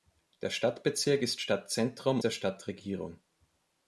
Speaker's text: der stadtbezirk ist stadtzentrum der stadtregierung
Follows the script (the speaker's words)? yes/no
yes